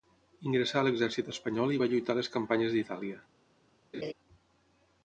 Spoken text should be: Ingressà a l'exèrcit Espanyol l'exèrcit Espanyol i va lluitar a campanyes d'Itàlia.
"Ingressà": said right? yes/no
yes